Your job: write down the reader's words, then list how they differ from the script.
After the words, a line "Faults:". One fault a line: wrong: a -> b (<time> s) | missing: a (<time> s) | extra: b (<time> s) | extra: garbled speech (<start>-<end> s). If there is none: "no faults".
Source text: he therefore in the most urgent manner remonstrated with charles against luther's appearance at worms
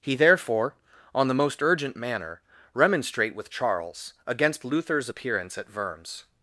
he therefore on the most urgent manner remonstrate with charles against luther's appearance at worms
Faults:
wrong: in -> on (1.1 s)
wrong: remonstrated -> remonstrate (2.7 s)